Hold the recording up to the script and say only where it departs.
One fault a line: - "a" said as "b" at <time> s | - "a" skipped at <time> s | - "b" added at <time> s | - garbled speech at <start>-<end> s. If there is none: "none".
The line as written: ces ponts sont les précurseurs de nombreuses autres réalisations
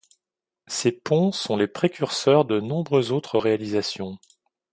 none